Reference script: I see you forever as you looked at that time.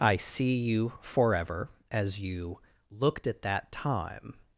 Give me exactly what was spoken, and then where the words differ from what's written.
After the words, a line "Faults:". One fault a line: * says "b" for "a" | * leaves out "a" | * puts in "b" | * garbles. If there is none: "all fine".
I see you forever as you looked at that time.
Faults:
all fine